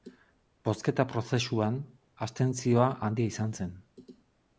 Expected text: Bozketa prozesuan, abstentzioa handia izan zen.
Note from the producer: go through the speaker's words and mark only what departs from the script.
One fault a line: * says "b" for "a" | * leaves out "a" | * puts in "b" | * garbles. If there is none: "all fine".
all fine